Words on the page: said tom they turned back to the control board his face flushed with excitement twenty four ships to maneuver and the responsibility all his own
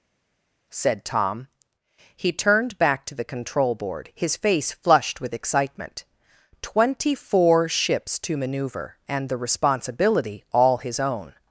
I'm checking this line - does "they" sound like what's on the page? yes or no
no